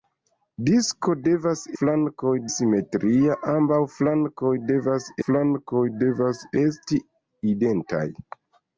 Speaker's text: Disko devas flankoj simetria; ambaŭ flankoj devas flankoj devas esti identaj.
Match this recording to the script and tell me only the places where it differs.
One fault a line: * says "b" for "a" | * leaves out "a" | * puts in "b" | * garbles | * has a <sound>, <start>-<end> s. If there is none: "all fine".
all fine